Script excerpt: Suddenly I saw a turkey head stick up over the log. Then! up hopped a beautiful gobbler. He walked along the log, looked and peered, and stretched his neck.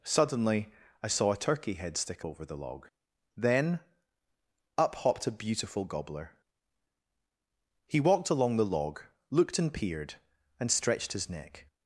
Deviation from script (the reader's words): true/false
true